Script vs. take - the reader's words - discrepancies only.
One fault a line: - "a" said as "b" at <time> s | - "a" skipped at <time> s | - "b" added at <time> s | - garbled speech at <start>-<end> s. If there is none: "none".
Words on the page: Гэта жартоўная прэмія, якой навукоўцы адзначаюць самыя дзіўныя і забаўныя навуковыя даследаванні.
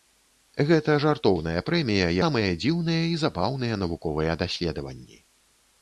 - "якой навукоўцы адзначаюць" skipped at 2.1 s